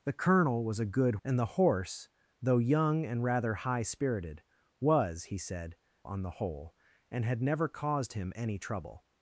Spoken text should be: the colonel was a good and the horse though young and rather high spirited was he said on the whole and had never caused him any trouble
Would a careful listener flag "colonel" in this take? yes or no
no